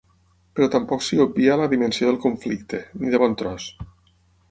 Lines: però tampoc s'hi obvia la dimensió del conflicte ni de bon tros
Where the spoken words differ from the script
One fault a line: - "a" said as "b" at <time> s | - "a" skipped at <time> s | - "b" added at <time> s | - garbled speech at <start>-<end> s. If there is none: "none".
none